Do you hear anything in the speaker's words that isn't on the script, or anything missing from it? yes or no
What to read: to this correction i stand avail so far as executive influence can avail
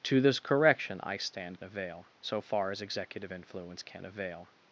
no